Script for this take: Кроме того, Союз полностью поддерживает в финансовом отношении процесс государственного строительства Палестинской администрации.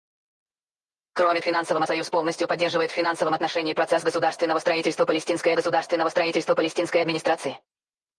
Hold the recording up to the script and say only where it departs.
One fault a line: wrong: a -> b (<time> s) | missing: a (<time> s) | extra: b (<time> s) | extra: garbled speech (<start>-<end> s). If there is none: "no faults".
wrong: того -> финансовом (1.4 s)
extra: государственного строительства Палестинской (5.5 s)